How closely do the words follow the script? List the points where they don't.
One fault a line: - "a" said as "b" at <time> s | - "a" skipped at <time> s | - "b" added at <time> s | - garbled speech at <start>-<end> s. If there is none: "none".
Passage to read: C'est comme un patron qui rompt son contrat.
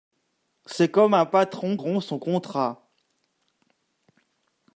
- "qui" skipped at 1.8 s